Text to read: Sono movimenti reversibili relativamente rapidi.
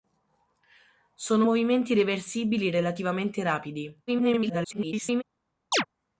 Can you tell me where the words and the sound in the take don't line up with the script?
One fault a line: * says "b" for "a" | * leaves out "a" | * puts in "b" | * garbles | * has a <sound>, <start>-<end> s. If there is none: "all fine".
* garbles
* has a chirp, 5.7-5.9 s